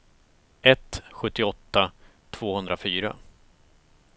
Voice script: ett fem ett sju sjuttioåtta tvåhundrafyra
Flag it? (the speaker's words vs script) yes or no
yes